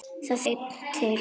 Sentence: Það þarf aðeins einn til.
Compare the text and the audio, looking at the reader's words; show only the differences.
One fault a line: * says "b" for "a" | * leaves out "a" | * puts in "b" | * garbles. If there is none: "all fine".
* leaves out "þarf aðeins"